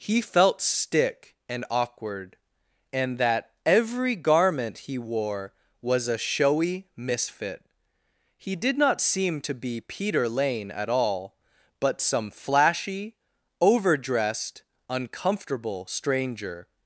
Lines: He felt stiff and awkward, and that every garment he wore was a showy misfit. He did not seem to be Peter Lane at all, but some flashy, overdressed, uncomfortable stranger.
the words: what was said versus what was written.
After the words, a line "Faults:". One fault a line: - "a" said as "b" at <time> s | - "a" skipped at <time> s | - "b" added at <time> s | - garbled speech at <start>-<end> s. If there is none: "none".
He felt stick and awkward, and that every garment he wore was a showy misfit. He did not seem to be Peter Lane at all, but some flashy, overdressed, uncomfortable stranger.
Faults:
- "stiff" said as "stick" at 0.6 s